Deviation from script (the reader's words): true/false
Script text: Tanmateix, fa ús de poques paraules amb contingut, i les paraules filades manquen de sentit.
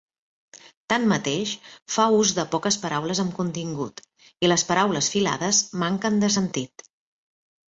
false